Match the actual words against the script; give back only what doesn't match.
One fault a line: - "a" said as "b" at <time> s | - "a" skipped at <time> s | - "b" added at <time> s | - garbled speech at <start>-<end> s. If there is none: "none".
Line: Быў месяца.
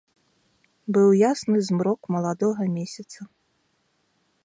- "ясны змрок маладога" added at 1.3 s